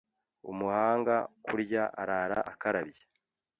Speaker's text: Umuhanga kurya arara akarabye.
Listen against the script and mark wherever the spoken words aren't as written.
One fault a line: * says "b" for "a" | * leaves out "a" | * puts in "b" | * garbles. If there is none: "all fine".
all fine